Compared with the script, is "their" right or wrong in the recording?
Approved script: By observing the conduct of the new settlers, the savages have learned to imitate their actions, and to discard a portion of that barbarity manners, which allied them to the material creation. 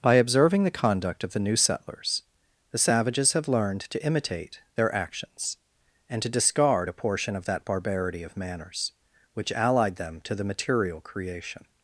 right